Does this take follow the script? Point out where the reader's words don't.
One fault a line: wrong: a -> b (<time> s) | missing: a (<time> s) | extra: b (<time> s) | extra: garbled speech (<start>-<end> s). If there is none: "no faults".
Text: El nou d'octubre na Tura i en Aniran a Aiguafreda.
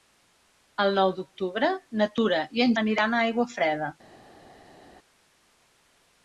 no faults